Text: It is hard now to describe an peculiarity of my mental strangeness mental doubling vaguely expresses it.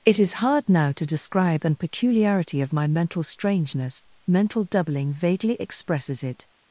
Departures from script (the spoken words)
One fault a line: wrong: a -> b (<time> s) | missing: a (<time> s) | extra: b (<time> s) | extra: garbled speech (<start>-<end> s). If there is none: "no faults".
no faults